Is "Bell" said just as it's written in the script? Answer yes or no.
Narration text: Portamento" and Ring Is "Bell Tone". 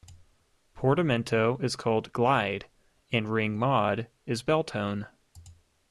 yes